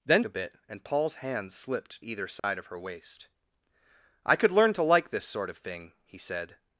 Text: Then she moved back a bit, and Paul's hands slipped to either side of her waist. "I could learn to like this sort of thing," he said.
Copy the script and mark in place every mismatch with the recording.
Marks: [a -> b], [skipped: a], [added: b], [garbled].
Then [skipped: she moved back] a bit, and Paul's hands slipped [skipped: to] either side of her waist. "I could learn to like this sort of thing," he said.